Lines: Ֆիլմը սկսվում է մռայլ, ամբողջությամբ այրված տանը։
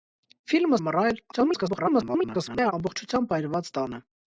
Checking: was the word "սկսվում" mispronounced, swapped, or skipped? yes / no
yes